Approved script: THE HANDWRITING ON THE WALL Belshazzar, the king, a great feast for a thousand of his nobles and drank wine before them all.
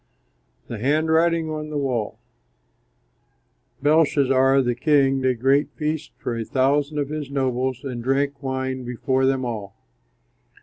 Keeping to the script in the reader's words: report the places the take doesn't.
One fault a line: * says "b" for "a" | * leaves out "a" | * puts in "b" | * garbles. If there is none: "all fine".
all fine